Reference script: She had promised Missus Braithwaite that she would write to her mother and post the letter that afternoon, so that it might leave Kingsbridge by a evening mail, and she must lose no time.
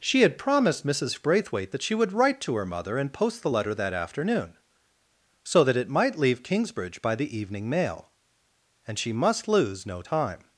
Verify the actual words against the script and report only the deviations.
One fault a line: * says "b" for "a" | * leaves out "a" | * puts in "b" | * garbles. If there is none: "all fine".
* says "the" for "a"